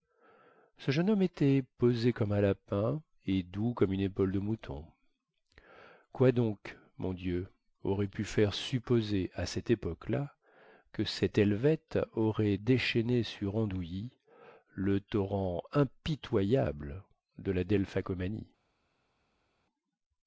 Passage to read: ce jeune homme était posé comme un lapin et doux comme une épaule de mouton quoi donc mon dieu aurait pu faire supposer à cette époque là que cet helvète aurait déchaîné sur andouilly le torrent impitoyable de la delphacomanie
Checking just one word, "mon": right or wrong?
right